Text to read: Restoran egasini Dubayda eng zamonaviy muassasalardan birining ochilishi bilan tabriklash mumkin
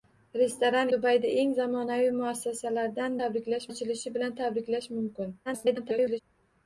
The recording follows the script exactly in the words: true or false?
false